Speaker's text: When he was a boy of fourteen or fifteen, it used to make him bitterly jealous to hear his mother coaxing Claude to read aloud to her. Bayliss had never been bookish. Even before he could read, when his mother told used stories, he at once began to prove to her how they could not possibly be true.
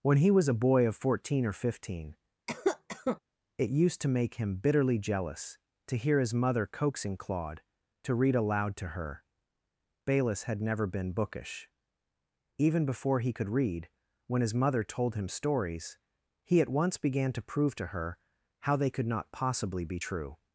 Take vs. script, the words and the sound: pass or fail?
fail